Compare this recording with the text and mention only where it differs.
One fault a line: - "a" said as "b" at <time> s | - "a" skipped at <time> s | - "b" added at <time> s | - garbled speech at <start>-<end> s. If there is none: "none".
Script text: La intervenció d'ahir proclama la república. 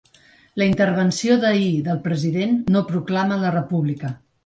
- "del president no" added at 1.9 s